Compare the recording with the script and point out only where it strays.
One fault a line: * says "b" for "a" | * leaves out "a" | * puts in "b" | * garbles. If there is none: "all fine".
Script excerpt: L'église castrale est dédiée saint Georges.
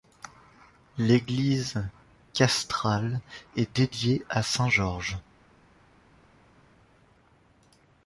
* puts in "à"